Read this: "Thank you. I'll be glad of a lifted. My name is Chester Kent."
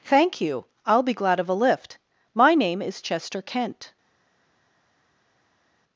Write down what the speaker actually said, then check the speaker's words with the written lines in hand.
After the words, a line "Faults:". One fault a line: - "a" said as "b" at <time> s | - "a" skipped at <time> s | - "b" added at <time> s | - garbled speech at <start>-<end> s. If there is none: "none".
"Thank you. I'll be glad of a lift. My name is Chester Kent."
Faults:
- "lifted" said as "lift" at 1.5 s